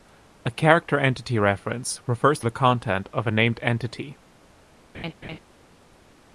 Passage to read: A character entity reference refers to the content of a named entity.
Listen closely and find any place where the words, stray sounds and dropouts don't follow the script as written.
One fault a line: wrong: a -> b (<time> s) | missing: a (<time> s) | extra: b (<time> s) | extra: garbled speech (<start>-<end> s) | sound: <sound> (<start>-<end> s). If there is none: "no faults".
sound: laugh (4.9-5.4 s)